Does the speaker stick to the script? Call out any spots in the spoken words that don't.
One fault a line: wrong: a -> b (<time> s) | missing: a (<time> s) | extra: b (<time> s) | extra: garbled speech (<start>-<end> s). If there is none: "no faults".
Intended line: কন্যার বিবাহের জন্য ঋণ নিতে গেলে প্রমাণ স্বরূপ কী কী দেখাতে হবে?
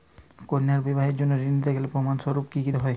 missing: দেখাতে (2.7 s)